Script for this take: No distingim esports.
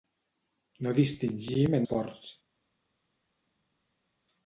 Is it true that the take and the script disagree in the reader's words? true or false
false